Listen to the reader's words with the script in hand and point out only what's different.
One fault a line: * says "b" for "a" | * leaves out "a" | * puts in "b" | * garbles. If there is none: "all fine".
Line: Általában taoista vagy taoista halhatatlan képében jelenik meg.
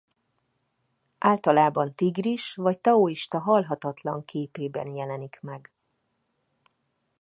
* says "tigris" for "taoista"